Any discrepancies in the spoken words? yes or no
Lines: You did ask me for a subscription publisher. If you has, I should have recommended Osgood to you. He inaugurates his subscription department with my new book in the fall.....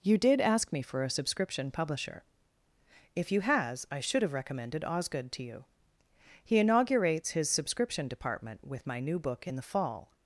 no